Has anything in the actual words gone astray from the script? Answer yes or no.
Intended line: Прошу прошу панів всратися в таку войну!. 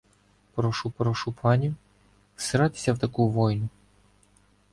no